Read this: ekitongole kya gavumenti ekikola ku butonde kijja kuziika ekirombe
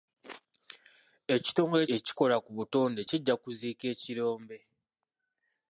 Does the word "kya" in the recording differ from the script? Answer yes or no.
yes